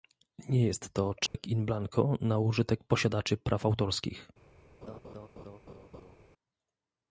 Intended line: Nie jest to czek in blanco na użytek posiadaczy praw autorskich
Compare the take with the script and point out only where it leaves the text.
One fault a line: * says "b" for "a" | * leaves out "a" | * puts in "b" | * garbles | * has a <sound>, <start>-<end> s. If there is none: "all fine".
* has a dropout, 1.3-1.3 s
* has a laugh, 4.8-6.2 s